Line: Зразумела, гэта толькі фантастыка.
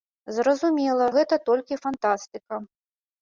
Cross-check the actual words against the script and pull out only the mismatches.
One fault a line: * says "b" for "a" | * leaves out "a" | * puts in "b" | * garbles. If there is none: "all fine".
all fine